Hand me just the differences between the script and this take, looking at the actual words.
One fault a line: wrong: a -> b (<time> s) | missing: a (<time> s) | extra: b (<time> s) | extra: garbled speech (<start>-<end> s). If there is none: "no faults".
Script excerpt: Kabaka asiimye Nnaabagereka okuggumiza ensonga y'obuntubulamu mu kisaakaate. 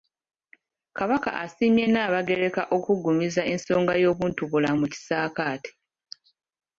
no faults